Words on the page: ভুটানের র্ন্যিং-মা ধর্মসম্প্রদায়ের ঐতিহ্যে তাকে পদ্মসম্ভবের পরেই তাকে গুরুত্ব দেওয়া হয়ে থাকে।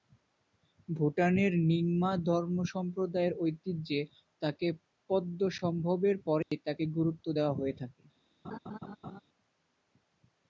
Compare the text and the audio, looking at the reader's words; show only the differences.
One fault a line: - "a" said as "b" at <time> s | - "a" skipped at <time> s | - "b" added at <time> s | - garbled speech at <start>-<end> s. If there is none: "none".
none